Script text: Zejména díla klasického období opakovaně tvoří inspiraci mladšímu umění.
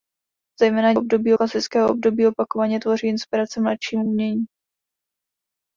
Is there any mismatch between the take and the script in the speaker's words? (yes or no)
yes